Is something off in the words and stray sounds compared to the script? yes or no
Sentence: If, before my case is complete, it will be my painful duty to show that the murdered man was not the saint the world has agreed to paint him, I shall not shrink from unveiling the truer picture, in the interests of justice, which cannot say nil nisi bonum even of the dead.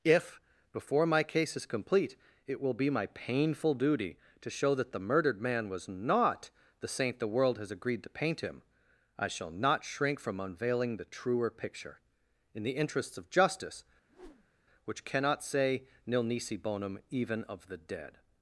yes